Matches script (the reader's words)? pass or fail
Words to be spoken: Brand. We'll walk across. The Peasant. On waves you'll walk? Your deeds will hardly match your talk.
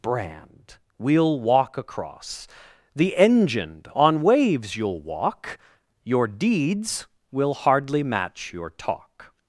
fail